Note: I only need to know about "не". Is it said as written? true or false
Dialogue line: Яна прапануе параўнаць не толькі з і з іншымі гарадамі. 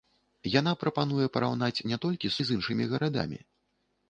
true